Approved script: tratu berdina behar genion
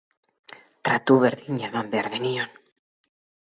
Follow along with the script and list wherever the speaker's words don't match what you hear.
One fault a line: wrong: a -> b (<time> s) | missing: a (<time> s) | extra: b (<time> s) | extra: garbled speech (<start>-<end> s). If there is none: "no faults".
extra: eman (1.7 s)